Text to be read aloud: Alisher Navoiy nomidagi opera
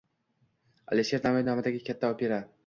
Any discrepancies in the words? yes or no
yes